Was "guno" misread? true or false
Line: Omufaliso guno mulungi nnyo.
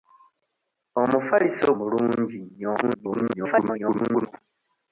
true